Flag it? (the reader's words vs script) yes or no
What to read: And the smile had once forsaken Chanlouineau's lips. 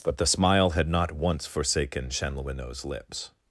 yes